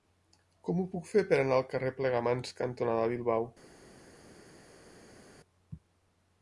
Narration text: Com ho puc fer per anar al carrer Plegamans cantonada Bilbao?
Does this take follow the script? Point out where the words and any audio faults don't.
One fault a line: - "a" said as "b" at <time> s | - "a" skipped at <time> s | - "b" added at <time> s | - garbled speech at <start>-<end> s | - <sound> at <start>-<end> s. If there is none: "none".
none